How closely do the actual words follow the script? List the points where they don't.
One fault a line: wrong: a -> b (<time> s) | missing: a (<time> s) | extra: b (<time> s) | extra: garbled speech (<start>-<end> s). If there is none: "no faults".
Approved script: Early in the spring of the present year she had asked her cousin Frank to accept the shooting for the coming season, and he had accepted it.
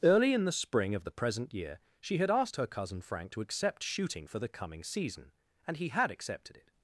missing: the (3.8 s)